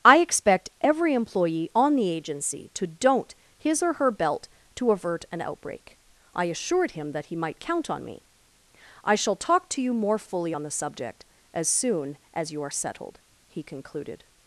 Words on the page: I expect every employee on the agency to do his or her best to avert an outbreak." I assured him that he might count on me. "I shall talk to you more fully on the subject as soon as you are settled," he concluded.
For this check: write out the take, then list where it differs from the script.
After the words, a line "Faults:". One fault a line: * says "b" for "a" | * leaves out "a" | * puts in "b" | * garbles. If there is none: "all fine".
I expect every employee on the agency to don't his or her belt to avert an outbreak." I assured him that he might count on me. "I shall talk to you more fully on the subject as soon as you are settled," he concluded.
Faults:
* says "don't" for "do"
* says "belt" for "best"